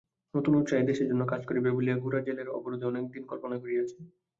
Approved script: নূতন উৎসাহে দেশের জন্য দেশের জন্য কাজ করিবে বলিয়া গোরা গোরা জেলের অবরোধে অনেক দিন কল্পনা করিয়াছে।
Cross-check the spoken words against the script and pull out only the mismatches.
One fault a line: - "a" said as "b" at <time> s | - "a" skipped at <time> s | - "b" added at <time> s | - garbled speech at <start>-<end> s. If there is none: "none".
- "দেশের জন্য" skipped at 1.2 s
- "গোরা" skipped at 2.2 s